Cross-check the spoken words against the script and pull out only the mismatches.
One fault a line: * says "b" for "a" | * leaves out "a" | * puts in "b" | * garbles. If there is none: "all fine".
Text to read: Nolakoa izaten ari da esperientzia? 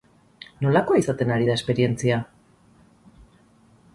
all fine